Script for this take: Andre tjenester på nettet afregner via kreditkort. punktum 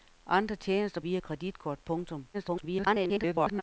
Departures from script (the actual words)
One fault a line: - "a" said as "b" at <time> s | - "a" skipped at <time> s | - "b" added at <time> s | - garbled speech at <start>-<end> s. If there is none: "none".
- "på nettet afregner" skipped at 1.0 s
- garbled speech at 2.3-3.6 s